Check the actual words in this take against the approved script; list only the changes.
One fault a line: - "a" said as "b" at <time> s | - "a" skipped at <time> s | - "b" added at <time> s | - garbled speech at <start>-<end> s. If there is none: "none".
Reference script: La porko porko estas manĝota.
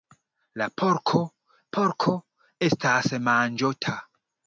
none